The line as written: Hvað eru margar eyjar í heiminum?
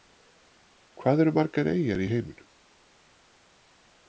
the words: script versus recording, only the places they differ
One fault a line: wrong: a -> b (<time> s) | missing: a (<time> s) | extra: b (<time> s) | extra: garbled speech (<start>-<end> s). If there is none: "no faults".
no faults